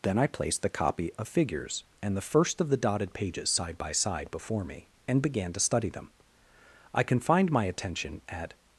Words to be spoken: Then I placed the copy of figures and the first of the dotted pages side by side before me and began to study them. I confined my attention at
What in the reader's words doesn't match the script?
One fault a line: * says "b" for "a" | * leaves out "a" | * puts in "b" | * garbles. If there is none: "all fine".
all fine